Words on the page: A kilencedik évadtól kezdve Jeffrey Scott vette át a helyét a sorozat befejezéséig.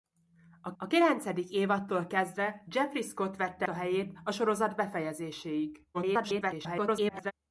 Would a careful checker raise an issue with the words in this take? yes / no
yes